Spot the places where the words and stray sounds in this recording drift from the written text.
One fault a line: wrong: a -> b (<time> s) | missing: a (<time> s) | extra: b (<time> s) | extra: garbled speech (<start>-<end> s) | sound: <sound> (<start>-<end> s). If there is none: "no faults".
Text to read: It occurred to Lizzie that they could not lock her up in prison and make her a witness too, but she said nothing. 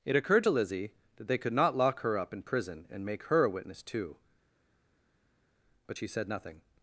no faults